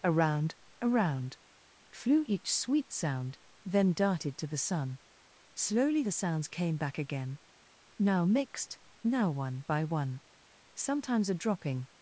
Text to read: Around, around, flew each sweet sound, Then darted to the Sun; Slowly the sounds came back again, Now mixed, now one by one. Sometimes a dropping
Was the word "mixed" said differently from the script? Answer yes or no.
no